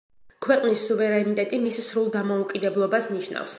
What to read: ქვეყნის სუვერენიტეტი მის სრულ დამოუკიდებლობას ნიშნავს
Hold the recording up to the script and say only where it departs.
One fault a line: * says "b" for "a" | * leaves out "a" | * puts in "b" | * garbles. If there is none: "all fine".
all fine